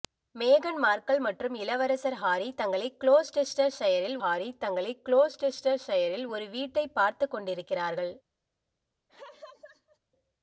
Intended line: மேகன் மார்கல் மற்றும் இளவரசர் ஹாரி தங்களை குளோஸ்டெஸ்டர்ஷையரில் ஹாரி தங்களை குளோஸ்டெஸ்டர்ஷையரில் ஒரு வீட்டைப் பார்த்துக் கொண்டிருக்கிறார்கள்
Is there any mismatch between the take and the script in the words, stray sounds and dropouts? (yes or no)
yes